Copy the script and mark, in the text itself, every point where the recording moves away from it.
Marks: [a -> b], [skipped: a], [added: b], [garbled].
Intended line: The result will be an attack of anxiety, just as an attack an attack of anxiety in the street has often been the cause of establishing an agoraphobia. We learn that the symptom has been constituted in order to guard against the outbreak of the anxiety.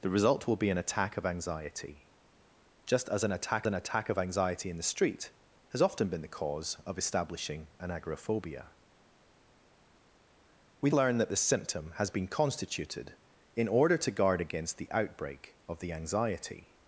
The result will be an attack of anxiety, just as an attack an attack of anxiety in the street has often been the cause of establishing an agoraphobia. We learn that the symptom has been constituted in order to guard against the outbreak of the anxiety.